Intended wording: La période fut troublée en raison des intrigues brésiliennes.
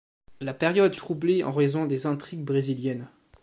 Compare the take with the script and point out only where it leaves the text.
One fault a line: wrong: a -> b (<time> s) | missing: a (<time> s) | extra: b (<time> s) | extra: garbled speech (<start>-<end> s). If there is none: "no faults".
missing: fut (0.9 s)